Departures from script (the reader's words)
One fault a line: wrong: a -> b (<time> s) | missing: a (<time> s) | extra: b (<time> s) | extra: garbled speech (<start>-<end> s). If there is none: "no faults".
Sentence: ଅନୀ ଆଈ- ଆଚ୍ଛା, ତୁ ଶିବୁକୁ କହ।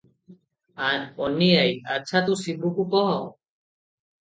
no faults